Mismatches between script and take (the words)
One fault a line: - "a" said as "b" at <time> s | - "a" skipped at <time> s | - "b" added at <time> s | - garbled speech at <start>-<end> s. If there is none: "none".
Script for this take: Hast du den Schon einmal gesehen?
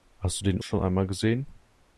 none